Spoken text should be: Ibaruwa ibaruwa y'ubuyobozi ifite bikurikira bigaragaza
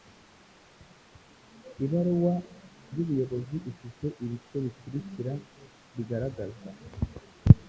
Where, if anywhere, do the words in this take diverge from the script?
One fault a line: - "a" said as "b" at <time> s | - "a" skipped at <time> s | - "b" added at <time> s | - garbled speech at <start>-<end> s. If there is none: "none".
- "ibaruwa" skipped at 2.3 s
- "ibice" added at 4.2 s